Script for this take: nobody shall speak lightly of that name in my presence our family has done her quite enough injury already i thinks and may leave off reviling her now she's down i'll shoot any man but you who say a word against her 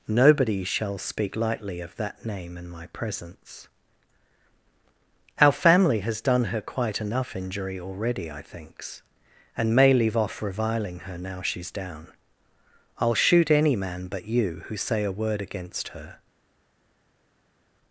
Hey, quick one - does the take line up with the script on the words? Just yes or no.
yes